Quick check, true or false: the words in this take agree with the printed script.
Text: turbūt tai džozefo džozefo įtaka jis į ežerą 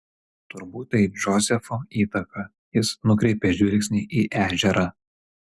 false